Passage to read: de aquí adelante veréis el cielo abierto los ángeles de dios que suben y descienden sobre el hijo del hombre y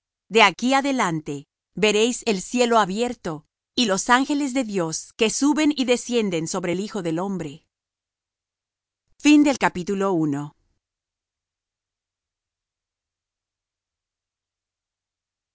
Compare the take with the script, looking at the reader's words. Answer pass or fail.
fail